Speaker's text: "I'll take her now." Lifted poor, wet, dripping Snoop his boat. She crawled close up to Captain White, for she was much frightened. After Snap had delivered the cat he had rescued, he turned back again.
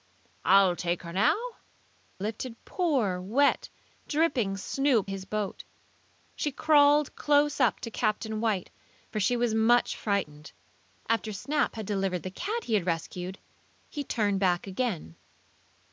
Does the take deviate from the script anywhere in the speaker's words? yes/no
no